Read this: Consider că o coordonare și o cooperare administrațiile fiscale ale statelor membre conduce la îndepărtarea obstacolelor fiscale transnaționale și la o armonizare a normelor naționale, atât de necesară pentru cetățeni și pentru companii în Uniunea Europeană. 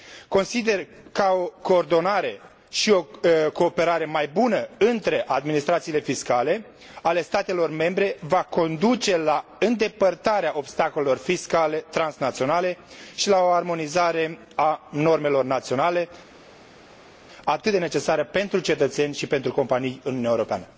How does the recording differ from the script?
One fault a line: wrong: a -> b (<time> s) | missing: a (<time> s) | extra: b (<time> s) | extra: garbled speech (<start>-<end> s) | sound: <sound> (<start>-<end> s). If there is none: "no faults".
extra: mai bună între (4.0 s)
extra: va (8.2 s)